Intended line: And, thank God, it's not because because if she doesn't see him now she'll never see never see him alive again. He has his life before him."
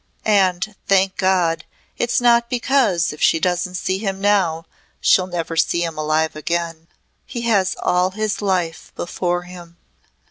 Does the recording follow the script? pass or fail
fail